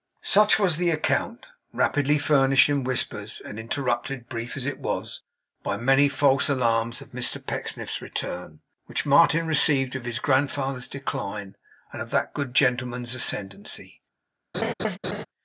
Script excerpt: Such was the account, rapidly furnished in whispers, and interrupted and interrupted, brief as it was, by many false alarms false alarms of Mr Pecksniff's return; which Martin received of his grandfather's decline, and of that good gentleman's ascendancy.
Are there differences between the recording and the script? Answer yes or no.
yes